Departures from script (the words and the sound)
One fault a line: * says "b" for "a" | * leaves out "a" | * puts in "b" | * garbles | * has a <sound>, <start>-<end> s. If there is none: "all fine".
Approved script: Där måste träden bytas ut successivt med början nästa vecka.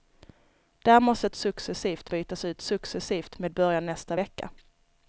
* says "successivt" for "träden"